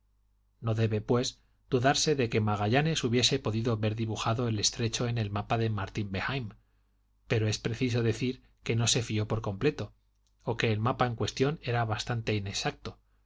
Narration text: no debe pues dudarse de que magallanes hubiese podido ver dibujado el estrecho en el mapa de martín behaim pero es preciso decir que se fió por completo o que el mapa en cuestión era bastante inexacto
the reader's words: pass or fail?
fail